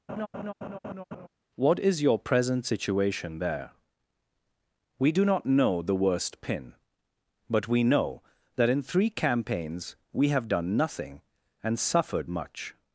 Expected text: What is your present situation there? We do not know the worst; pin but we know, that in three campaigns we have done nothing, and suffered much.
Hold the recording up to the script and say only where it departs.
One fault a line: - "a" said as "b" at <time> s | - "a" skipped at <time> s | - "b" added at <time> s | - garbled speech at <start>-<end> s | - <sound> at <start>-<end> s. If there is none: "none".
- laugh at 0.1-1.3 s